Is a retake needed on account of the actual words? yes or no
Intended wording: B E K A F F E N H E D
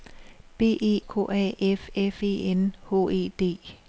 no